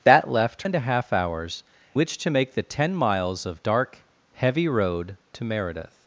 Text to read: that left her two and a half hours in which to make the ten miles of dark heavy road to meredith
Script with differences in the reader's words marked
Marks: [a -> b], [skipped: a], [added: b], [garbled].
that left [skipped: her two] and a half hours [skipped: in] which to make the ten miles of dark heavy road to meredith